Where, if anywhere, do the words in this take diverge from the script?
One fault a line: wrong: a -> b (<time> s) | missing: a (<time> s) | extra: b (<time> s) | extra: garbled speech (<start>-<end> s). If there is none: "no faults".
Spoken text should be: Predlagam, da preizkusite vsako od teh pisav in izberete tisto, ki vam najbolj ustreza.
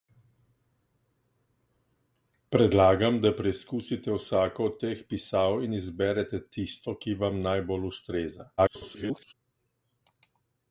extra: garbled speech (8.6-9.3 s)